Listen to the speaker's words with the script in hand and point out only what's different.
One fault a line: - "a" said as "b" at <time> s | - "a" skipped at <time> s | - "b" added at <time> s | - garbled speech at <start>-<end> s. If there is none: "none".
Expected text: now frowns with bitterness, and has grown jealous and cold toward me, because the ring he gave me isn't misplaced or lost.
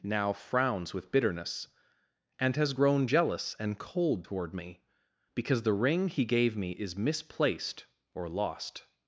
- "isn't" said as "is" at 6.7 s